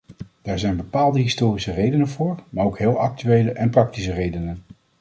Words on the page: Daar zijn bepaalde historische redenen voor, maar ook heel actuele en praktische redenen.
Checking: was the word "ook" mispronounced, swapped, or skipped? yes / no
no